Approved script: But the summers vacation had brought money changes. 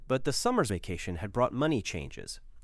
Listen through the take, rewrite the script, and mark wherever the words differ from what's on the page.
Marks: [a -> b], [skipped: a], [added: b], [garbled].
But the summers vacation had brought money changes.